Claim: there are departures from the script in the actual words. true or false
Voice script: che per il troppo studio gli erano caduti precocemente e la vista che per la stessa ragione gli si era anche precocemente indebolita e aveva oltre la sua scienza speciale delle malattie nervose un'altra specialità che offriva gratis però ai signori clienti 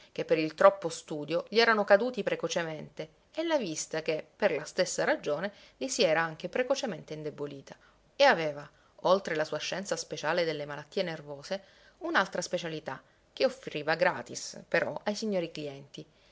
false